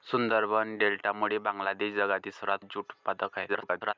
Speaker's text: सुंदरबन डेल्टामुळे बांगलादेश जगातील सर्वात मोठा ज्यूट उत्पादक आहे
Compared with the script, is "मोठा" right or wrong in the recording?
wrong